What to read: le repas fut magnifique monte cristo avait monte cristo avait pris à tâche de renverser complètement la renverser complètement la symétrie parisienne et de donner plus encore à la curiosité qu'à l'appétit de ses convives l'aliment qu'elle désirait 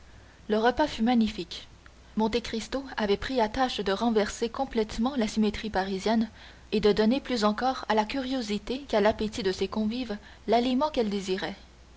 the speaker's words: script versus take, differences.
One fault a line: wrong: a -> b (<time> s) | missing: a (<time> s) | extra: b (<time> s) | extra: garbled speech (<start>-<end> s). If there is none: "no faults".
missing: monte cristo avait (3.2 s)
missing: renverser complètement la (5.3 s)